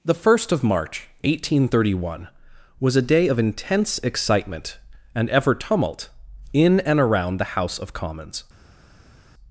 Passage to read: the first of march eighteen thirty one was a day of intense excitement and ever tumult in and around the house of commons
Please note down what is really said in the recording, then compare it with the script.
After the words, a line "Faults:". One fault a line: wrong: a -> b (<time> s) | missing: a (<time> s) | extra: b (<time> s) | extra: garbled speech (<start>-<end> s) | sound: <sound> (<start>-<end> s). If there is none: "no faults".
the first of march eighteen thirty one was a day of intense excitement and ever tumult in and around the house of commons
Faults:
no faults